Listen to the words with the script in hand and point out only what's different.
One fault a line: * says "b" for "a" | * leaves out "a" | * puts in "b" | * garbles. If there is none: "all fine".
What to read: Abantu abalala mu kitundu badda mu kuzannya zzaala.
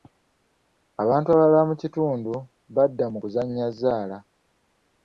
all fine